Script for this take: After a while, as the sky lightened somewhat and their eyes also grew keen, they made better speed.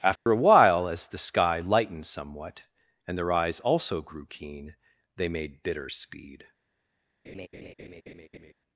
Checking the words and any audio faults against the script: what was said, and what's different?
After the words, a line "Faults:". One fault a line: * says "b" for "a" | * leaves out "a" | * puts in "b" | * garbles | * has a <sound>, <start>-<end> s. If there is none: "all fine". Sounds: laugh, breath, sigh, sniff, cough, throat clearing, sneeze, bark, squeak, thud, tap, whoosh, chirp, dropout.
After a while, as the sky lightened somewhat and their eyes also grew keen, they made bitter speed.
Faults:
* has a dropout, 0.2-0.3 s
* says "bitter" for "better"
* has a laugh, 7.2-8.5 s